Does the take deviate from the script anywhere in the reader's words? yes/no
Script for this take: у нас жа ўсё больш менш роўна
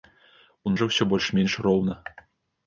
yes